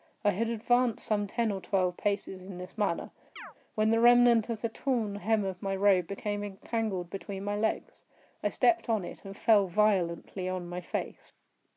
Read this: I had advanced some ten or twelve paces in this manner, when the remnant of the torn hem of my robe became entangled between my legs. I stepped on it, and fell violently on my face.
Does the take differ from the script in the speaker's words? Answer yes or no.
no